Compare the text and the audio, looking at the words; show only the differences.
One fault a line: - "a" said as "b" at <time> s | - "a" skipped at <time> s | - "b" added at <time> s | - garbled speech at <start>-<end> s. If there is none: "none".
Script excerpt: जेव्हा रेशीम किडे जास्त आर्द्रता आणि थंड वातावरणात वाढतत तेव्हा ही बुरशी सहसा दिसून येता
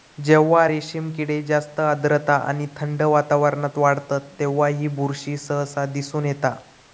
none